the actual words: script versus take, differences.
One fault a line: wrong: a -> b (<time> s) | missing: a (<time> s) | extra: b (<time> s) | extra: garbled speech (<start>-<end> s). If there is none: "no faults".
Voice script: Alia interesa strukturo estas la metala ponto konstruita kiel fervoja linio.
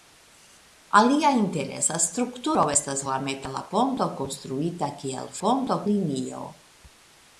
wrong: fervoja -> ponto (5.4 s)